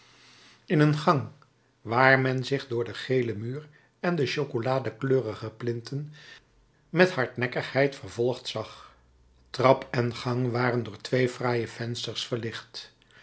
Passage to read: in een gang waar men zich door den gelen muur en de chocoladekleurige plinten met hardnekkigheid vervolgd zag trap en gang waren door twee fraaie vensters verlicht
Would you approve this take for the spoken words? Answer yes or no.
yes